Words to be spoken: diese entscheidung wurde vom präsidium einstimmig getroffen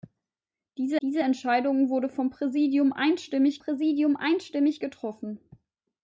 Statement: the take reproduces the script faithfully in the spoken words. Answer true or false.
false